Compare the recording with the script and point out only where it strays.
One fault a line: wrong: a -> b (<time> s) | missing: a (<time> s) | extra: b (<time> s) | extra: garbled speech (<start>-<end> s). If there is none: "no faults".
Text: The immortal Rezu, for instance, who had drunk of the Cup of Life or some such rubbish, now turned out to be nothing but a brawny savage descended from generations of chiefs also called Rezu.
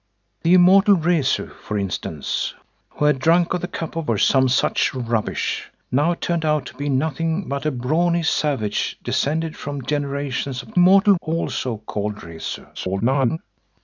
missing: Life (4.1 s)
wrong: chiefs -> immortal (10.7 s)
extra: garbled speech (12.7-13.4 s)